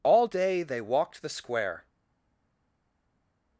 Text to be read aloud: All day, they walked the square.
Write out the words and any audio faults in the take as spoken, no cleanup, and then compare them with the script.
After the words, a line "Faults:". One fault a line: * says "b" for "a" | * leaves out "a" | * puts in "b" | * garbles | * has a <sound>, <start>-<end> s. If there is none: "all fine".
All day, they walked the square.
Faults:
all fine